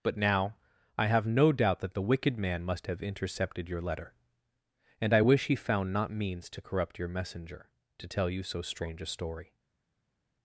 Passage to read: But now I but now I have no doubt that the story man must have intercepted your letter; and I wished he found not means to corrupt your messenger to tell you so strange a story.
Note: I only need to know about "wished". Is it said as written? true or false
false